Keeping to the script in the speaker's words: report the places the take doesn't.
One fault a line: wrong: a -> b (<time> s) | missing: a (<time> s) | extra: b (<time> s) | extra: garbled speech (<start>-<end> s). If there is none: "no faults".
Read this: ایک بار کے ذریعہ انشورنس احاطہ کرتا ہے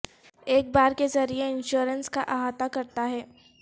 extra: کا (2.1 s)